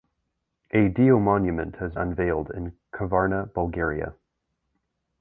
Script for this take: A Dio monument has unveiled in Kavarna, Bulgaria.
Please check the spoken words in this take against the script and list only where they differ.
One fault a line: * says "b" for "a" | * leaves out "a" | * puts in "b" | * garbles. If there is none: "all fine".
all fine